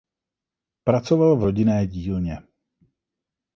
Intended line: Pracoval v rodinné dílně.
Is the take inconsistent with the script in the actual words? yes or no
no